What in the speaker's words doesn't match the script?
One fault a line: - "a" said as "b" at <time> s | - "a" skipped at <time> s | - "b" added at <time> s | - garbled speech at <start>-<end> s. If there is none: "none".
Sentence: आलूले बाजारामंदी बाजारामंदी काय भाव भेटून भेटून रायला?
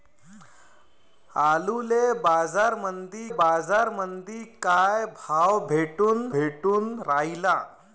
none